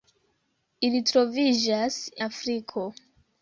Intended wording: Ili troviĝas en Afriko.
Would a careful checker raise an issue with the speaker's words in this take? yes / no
yes